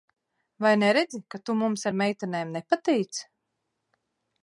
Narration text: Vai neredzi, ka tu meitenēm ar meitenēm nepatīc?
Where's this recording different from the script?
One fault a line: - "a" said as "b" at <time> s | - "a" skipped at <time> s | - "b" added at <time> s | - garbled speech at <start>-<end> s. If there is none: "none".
- "meitenēm" said as "mums" at 1.6 s